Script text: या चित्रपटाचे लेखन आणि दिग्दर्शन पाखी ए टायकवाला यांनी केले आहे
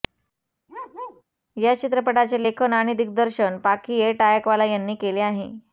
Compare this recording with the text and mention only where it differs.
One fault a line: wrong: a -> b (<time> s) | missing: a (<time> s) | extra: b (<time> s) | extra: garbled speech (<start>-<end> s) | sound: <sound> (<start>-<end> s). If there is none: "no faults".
sound: bark (0.7-1.2 s)